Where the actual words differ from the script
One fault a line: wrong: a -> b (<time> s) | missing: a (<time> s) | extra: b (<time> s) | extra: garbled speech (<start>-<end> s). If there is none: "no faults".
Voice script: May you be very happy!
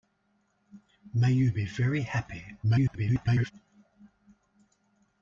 extra: garbled speech (2.6-3.5 s)